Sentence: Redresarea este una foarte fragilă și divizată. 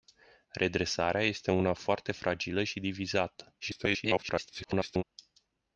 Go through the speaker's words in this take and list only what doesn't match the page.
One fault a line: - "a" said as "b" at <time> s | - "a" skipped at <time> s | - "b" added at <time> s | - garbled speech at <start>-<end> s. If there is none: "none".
- garbled speech at 3.6-5.0 s